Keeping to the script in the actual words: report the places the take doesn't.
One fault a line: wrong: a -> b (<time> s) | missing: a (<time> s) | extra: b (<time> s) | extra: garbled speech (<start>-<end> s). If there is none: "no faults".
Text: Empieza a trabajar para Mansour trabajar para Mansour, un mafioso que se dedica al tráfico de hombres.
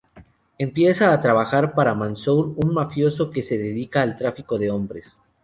missing: trabajar para Mansour (2.5 s)